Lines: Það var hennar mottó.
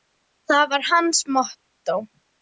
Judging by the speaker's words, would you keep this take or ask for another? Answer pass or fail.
fail